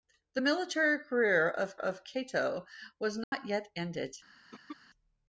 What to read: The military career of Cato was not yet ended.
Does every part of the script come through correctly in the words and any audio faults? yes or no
no